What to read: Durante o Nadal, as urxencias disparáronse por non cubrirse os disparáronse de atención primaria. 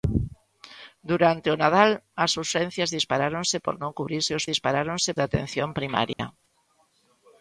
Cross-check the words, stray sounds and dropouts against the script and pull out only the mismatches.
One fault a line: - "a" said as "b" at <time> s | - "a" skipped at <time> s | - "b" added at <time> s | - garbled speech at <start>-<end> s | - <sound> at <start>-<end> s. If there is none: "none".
- dropout at 6.1-6.2 s